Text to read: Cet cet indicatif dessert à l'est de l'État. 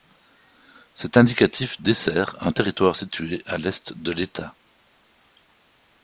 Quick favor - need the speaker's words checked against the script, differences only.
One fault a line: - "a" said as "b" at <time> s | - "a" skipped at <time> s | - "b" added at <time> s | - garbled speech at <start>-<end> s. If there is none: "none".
- "cet" skipped at 1.2 s
- "un territoire situé" added at 2.4 s